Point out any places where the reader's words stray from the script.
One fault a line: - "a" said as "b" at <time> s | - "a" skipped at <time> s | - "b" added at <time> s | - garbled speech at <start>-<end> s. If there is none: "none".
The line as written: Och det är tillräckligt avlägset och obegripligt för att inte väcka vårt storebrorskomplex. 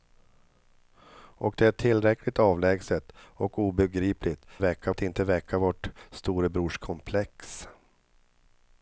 - "för" said as "väcka" at 4.6 s